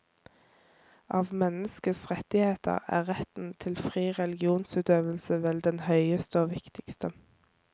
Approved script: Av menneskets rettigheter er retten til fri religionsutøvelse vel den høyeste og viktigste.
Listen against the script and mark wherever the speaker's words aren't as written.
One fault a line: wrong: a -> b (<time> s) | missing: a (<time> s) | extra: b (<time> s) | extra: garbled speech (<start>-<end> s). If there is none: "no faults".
no faults